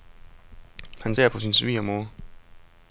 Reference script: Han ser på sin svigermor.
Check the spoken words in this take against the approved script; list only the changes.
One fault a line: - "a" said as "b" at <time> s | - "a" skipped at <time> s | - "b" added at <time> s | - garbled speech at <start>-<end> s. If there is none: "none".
none